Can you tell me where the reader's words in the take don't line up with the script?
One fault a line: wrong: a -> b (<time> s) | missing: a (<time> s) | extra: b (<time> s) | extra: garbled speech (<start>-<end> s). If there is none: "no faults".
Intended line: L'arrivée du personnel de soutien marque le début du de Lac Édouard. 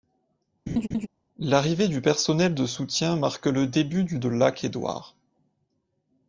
no faults